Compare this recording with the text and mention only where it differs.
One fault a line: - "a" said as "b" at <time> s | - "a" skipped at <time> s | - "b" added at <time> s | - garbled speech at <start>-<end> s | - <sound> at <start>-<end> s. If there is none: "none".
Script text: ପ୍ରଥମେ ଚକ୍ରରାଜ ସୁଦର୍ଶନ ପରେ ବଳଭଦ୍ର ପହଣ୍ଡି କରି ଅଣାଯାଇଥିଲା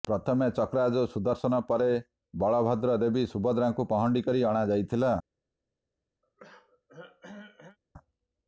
- "ଦେବୀ ସୁଭଦ୍ରାଙ୍କୁ" added at 3.0 s
- throat clearing at 6.2-7.8 s